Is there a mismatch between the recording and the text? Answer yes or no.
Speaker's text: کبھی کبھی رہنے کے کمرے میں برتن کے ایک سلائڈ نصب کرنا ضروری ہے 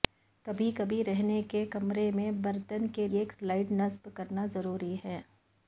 no